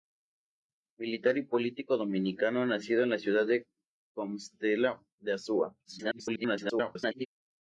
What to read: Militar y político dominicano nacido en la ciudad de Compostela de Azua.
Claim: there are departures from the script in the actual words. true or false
true